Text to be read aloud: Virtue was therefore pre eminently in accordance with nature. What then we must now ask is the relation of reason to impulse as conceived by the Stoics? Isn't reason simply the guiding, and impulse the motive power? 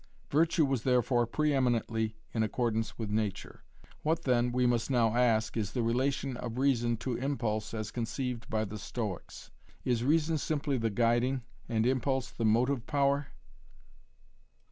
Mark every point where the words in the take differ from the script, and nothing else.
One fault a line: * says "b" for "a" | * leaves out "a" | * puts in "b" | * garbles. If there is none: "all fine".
* says "Is" for "Isn't"